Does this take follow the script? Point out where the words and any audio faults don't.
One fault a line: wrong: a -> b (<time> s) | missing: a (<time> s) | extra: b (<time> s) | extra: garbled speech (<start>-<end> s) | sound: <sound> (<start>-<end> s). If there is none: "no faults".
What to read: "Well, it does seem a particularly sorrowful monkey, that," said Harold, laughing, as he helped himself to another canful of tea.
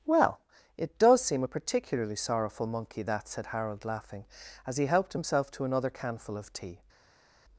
no faults